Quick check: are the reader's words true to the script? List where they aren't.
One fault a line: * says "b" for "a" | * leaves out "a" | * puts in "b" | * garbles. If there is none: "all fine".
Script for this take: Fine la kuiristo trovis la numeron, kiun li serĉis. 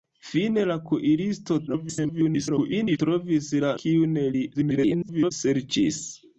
* garbles
* leaves out "numeron"
* garbles